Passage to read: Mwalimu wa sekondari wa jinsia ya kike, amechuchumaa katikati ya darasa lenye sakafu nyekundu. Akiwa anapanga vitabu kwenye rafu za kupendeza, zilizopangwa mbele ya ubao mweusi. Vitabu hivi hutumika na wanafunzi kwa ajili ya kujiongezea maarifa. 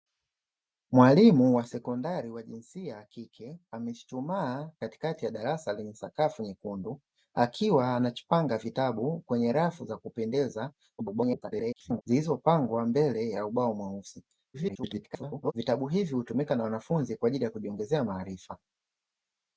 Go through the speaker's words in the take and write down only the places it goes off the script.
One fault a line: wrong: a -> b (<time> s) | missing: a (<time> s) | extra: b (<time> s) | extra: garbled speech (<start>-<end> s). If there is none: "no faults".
extra: garbled speech (11.0-12.0 s)
extra: garbled speech (14.5-15.5 s)